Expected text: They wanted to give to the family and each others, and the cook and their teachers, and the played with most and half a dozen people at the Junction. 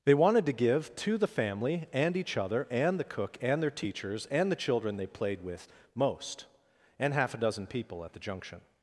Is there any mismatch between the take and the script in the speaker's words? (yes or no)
yes